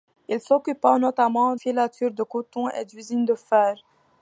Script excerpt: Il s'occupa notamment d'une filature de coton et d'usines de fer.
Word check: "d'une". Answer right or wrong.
wrong